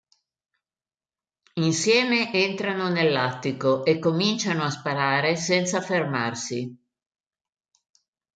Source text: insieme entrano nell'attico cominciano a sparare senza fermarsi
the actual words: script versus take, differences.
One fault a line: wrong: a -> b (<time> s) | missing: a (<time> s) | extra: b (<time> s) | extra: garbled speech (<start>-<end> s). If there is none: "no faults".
extra: e (3.8 s)